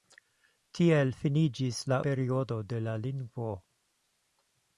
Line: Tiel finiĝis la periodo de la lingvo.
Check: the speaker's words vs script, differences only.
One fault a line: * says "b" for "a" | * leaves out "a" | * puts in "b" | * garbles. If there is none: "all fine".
all fine